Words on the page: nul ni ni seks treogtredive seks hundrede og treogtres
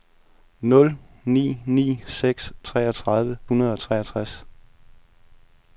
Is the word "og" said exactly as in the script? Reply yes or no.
yes